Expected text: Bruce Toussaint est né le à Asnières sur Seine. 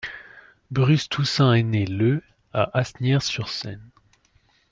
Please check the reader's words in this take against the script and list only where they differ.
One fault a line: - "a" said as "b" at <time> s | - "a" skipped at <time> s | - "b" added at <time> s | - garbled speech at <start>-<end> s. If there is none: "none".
none